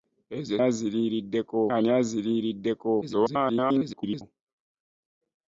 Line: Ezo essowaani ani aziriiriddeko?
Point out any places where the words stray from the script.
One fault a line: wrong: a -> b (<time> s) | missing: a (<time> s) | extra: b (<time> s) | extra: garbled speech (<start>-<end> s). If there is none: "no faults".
wrong: essowaani -> aziriiriddeko (0.7 s)
extra: garbled speech (3.0-4.2 s)